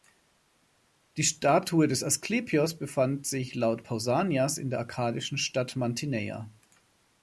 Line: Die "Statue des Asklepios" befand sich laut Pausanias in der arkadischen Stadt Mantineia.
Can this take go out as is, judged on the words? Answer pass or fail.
pass